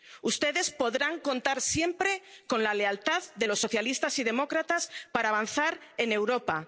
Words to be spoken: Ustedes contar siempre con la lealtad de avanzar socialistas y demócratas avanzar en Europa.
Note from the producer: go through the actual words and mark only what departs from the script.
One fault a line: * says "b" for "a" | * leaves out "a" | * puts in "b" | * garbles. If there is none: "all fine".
* puts in "podrán"
* says "los" for "avanzar"
* puts in "para"